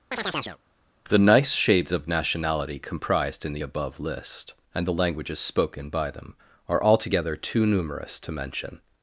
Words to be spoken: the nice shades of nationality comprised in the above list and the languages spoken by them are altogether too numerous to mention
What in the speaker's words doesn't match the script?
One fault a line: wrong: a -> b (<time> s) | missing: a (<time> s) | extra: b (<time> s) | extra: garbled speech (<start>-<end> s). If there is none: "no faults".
no faults